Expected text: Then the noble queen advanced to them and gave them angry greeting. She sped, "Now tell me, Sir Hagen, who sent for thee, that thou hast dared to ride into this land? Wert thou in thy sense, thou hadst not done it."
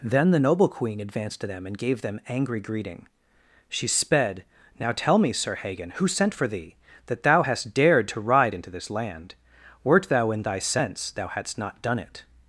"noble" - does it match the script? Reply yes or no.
yes